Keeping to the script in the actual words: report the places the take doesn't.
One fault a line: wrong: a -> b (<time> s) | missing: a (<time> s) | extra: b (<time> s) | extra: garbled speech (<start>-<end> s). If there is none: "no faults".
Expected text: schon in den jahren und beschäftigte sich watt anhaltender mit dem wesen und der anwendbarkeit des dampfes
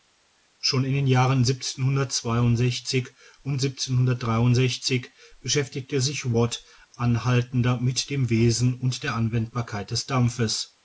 no faults